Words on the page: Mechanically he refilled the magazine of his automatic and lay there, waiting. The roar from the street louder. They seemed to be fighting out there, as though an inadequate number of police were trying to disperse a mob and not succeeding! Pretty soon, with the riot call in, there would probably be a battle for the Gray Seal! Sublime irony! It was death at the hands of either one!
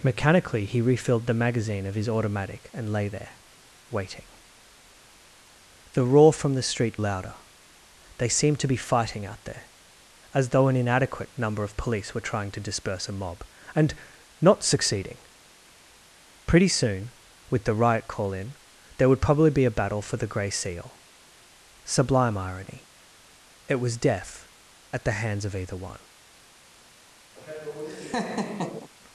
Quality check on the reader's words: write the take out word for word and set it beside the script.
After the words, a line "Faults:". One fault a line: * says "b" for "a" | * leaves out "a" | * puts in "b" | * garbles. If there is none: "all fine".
Mechanically he refilled the magazine of his automatic and lay there, waiting. The roar from the street louder. They seemed to be fighting out there, as though an inadequate number of police were trying to disperse a mob and not succeeding! Pretty soon, with the riot call in, there would probably be a battle for the Gray Seal! Sublime irony! It was death at the hands of either one!
Faults:
all fine